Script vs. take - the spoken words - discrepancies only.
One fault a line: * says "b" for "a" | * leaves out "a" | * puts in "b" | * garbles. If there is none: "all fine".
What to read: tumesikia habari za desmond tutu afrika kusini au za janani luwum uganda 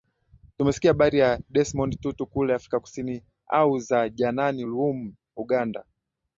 * puts in "kule"